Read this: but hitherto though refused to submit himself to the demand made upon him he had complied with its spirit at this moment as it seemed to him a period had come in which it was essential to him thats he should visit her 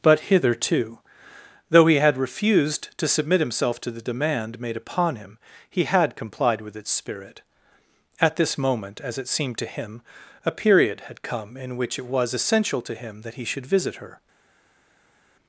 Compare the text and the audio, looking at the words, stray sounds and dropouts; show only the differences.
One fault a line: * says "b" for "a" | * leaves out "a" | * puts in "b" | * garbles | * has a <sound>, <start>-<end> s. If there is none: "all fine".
* puts in "he had"
* says "that" for "thats"